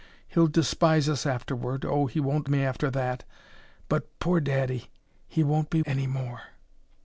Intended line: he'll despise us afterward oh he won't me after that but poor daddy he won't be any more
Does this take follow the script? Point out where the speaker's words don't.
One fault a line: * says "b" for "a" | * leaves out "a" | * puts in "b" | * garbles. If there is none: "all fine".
all fine